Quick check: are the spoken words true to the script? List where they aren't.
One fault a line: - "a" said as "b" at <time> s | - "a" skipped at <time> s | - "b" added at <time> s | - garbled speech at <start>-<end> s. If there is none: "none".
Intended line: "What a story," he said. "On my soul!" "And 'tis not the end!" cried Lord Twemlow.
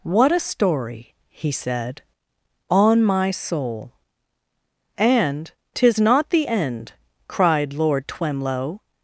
none